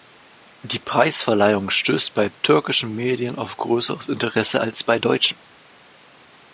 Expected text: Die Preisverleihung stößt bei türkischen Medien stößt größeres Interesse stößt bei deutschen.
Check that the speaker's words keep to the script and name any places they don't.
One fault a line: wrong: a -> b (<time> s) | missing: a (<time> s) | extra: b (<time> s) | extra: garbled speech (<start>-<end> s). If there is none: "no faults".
wrong: stößt -> auf (3.4 s)
wrong: stößt -> als (4.6 s)